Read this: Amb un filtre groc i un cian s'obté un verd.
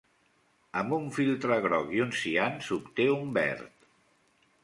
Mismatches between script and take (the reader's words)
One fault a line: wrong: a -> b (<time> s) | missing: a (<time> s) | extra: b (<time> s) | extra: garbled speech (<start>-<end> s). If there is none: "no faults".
no faults